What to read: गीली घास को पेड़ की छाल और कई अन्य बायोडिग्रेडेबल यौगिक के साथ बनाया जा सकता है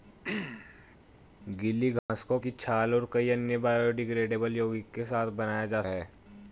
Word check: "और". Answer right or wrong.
right